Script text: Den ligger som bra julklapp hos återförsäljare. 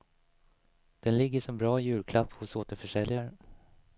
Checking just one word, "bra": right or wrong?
right